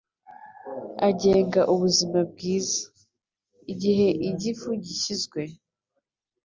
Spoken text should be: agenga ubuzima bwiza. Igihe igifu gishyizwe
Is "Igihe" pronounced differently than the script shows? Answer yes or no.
no